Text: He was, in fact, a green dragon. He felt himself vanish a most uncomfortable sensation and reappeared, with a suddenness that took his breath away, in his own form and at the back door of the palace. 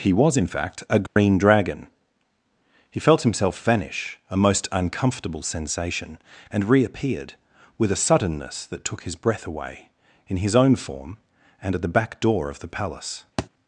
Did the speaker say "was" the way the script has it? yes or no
yes